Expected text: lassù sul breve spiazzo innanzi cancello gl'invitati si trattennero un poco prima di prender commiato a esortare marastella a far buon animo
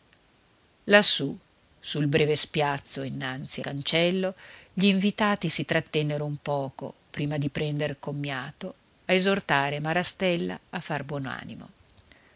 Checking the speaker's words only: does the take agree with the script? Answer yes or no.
yes